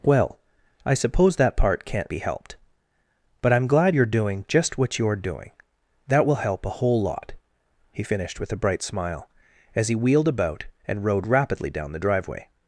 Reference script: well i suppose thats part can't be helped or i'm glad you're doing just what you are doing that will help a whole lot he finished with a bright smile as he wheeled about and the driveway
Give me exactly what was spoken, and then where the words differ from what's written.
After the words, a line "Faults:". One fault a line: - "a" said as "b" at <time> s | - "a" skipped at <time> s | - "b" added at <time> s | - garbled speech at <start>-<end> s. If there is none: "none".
well i suppose that part can't be helped but i'm glad you're doing just what you are doing that will help a whole lot he finished with a bright smile as he wheeled about and rode rapidly down the driveway
Faults:
- "thats" said as "that" at 1.4 s
- "or" said as "but" at 3.4 s
- "rode rapidly down" added at 11.1 s